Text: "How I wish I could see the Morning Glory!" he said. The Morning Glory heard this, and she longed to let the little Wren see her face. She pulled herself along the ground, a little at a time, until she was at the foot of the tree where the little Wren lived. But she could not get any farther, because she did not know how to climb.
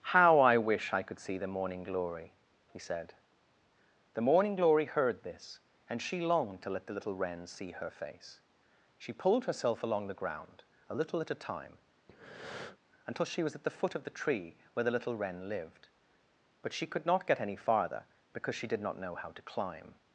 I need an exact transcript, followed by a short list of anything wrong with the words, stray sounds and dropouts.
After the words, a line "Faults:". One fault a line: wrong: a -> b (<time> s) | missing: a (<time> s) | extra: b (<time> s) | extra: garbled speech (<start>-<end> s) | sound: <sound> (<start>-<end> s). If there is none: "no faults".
"How I wish I could see the Morning Glory!" he said. The Morning Glory heard this, and she longed to let the little Wren see her face. She pulled herself along the ground, a little at a time, until she was at the foot of the tree where the little Wren lived. But she could not get any farther, because she did not know how to climb.
Faults:
sound: breath (12.1-12.8 s)